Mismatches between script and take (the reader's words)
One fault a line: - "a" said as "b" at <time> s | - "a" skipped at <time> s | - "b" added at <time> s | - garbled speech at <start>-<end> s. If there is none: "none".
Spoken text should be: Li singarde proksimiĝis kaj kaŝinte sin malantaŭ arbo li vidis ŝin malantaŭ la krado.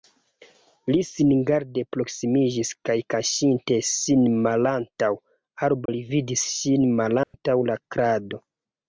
none